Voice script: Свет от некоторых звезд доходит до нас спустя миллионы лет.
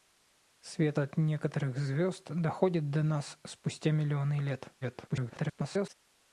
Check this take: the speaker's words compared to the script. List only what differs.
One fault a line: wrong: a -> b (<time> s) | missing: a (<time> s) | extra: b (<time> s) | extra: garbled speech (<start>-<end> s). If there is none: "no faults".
extra: garbled speech (4.8-5.9 s)